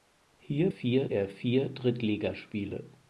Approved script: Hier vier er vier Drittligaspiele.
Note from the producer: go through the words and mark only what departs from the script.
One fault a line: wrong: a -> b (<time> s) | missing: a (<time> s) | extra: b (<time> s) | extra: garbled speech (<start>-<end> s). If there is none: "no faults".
no faults